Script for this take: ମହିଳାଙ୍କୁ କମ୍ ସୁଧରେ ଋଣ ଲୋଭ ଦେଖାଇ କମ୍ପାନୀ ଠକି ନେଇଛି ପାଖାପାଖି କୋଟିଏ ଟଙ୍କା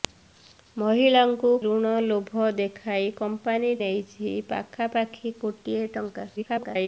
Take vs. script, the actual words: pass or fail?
fail